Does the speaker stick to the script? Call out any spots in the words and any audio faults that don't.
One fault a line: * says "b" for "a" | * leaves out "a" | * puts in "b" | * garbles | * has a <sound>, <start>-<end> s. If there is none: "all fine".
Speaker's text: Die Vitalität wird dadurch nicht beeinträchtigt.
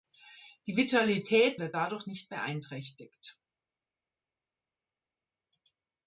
all fine